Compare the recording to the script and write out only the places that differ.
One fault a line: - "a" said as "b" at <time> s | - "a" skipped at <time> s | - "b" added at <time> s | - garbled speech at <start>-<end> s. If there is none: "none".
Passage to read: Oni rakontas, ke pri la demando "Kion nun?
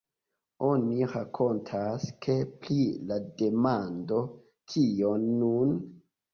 none